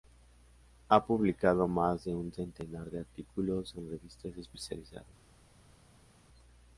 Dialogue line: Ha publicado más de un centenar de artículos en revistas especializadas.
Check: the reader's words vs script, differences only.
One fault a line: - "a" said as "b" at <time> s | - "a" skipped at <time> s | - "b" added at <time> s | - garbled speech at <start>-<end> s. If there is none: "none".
none